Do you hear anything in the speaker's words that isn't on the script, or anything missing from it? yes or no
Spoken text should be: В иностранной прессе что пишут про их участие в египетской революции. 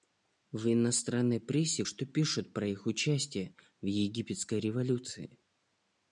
no